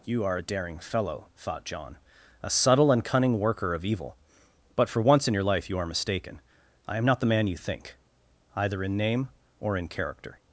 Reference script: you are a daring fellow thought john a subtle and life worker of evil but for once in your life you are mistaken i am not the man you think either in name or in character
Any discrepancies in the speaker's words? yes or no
yes